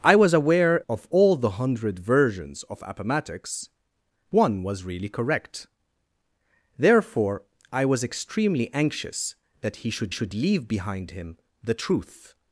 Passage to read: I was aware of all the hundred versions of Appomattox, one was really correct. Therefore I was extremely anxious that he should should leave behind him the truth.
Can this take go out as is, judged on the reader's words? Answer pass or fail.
pass